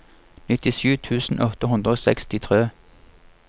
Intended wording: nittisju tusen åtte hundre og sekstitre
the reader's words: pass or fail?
pass